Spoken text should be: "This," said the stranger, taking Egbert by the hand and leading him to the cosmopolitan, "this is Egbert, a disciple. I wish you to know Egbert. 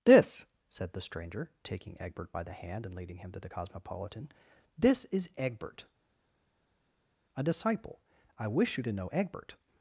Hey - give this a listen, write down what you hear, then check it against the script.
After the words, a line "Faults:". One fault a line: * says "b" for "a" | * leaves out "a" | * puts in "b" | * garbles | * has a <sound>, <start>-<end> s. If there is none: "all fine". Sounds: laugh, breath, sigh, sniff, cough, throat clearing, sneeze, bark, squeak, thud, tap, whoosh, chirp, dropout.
"This," said the stranger, taking Egbert by the hand and leading him to the cosmopolitan, "this is Egbert, a disciple. I wish you to know Egbert.
Faults:
all fine